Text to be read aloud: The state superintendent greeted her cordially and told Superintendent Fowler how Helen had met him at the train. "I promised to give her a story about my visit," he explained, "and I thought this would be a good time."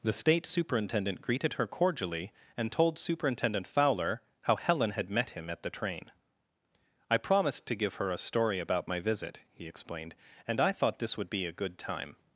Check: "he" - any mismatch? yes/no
no